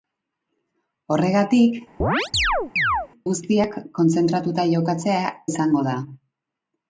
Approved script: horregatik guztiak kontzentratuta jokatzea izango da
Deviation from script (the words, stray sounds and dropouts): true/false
true